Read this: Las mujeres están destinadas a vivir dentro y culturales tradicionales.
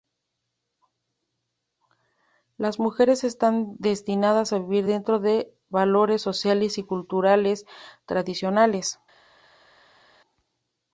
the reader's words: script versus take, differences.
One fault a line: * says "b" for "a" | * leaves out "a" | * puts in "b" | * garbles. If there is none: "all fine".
* puts in "de valores sociales"